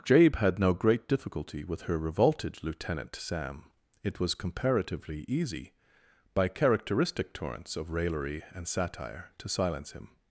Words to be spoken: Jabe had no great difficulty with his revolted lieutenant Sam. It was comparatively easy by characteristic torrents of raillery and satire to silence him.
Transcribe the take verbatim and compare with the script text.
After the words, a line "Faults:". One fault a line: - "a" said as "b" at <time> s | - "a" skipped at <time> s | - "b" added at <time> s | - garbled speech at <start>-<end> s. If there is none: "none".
Jabe had no great difficulty with her revolted lieutenant Sam. It was comparatively easy by characteristic torrents of raillery and satire to silence him.
Faults:
- "his" said as "her" at 1.8 s